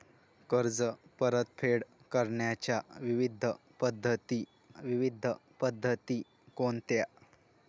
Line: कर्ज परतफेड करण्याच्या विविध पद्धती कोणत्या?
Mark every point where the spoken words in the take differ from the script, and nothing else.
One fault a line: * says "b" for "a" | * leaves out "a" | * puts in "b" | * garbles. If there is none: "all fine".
* puts in "विविध पद्धती"